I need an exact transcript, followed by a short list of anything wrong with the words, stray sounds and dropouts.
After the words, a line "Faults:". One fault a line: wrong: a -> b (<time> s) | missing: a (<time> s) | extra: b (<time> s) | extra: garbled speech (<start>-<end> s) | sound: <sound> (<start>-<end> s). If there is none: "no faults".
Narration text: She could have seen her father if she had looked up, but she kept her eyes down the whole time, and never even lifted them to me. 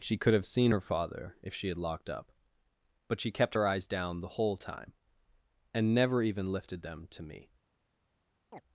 She could have seen her father if she had locked up, but she kept her eyes down the whole time, and never even lifted them to me.
Faults:
wrong: looked -> locked (1.8 s)
sound: chirp (8.5-8.6 s)